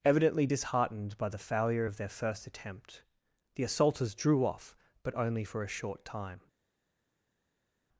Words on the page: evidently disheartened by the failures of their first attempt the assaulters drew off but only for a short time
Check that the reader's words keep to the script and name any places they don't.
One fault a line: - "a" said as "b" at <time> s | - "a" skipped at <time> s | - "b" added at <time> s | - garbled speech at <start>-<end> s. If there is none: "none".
- "failures" said as "failure" at 1.4 s